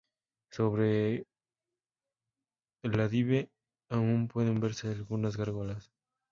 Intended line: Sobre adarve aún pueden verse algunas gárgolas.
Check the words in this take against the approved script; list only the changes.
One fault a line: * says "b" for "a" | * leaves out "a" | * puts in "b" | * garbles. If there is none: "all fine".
* puts in "el"